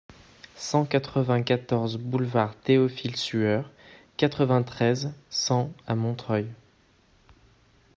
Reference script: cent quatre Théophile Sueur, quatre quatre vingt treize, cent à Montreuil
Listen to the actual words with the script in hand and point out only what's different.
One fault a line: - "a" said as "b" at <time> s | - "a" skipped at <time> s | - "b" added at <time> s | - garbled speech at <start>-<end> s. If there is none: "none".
- "vingt quatorze boulevard" added at 1.2 s
- "quatre" skipped at 4.5 s